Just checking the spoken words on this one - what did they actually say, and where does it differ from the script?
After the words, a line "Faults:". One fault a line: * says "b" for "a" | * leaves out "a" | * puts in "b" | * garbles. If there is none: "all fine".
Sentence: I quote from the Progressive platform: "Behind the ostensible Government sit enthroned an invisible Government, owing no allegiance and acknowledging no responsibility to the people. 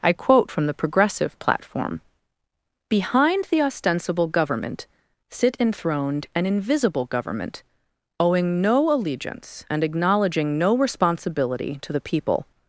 I quote from the Progressive platform: "Behind the ostensible Government sit enthroned an invisible Government, owing no allegiance and acknowledging no responsibility to the people.
Faults:
all fine